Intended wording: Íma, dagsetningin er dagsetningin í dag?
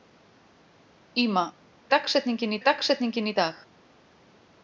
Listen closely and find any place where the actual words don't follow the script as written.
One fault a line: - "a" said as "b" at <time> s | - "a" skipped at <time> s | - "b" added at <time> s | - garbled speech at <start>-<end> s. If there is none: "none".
none